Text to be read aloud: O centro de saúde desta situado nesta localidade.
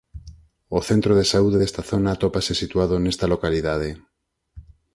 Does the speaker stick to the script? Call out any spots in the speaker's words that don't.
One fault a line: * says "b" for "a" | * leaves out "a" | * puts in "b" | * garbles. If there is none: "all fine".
* puts in "zona atópase"